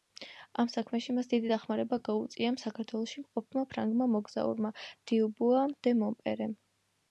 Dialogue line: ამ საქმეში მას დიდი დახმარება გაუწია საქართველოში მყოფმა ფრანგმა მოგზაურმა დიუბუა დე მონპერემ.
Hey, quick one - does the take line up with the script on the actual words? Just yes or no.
yes